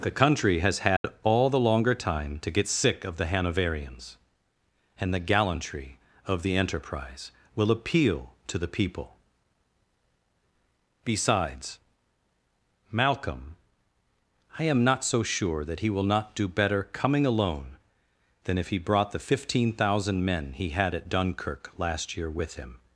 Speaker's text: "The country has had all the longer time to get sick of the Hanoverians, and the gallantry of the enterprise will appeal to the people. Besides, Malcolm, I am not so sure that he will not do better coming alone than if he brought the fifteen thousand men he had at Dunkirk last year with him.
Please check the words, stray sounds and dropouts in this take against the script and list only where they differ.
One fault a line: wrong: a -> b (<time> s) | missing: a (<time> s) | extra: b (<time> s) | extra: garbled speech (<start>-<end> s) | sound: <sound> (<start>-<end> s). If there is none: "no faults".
sound: dropout (1.0-1.0 s)